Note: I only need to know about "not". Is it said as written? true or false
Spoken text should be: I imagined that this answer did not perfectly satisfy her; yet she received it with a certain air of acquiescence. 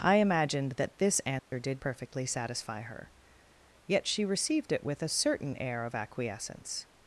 false